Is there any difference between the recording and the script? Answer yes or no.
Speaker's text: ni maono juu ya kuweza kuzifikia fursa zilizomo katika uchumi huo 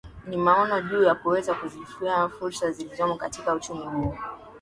no